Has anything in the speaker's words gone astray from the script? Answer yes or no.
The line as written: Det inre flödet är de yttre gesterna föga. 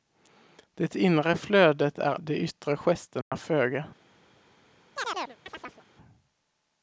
no